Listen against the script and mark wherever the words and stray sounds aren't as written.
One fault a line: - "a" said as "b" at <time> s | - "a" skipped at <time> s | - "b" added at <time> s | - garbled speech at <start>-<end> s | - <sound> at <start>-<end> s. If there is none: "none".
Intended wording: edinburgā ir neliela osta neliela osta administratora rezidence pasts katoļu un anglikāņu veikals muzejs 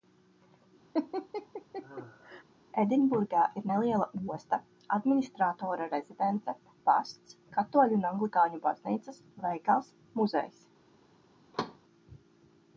- laugh at 0.9-2.4 s
- "neliela osta" skipped at 4.6 s
- "baznīcas" added at 8.7 s
- thud at 11.5-11.8 s